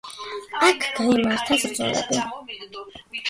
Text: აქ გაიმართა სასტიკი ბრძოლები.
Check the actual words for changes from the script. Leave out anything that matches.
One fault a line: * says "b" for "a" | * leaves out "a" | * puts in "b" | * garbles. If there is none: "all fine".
* leaves out "სასტიკი"